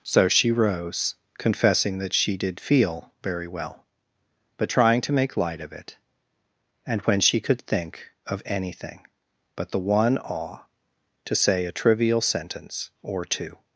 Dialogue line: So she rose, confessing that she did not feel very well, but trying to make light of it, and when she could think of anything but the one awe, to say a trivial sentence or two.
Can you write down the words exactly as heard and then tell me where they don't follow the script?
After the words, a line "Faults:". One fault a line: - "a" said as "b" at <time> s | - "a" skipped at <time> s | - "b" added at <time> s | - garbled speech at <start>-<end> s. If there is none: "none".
So she rose, confessing that she did feel very well, but trying to make light of it, and when she could think of anything but the one awe, to say a trivial sentence or two.
Faults:
- "not" skipped at 2.6 s